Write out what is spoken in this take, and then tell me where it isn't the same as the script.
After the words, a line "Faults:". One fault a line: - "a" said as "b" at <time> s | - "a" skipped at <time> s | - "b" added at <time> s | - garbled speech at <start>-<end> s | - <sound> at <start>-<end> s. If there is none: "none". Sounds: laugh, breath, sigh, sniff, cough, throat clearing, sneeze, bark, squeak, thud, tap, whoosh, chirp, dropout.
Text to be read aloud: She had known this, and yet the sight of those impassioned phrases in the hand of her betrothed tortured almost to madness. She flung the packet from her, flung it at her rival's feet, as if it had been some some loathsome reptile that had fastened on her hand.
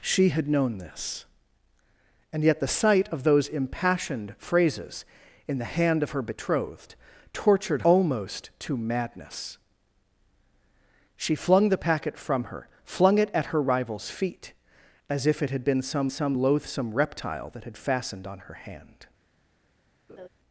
She had known this, and yet the sight of those impassioned phrases in the hand of her betrothed tortured almost to madness. She flung the packet from her, flung it at her rival's feet, as if it had been some some loathsome reptile that had fastened on her hand.
Faults:
- laugh at 20.1-20.3 s